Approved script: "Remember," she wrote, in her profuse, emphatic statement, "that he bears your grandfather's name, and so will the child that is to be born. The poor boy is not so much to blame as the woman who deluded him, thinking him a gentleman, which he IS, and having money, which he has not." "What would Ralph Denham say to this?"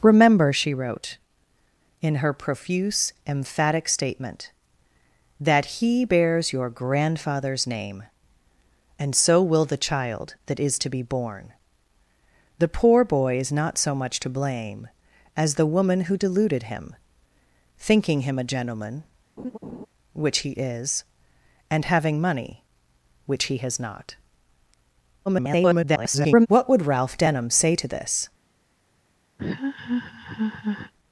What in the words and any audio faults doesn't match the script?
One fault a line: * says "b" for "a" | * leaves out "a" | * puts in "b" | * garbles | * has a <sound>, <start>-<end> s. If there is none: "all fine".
* has a laugh, 19.4-19.9 s
* garbles
* has a laugh, 29.4-30.9 s